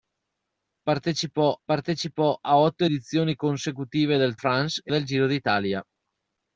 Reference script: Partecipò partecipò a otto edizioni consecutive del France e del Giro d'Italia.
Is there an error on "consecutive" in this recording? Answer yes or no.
no